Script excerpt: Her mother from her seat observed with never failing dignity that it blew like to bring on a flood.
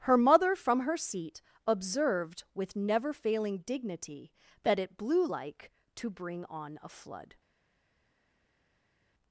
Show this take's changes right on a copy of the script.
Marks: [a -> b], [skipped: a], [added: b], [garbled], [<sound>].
Her mother from her seat observed with never failing dignity that it blew like to bring on a flood.